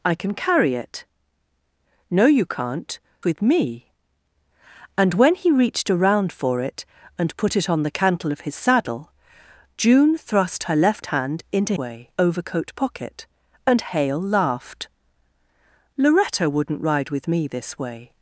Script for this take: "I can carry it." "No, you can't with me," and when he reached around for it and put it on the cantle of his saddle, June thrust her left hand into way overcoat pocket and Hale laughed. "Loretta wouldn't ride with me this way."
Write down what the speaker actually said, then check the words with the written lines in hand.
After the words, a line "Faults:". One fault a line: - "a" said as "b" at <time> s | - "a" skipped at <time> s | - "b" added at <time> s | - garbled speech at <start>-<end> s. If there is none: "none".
"I can carry it." "No, you can't with me," and when he reached around for it and put it on the cantle of his saddle, June thrust her left hand into way overcoat pocket and Hale laughed. "Loretta wouldn't ride with me this way."
Faults:
none